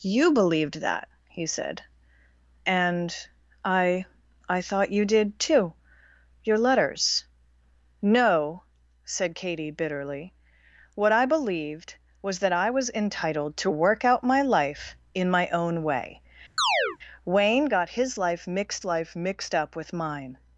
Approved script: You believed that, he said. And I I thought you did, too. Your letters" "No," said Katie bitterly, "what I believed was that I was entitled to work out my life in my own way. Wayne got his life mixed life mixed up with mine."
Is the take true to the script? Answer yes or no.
yes